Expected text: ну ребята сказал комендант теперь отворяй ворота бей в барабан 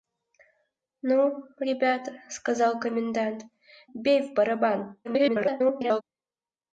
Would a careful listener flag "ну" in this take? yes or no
no